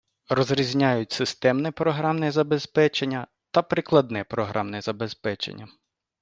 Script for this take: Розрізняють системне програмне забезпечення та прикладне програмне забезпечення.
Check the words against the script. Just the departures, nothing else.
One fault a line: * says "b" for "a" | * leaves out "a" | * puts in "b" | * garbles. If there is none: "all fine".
all fine